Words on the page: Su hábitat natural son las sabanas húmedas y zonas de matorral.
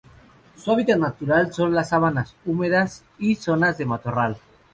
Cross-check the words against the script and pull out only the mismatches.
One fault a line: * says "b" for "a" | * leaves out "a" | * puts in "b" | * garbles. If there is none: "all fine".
all fine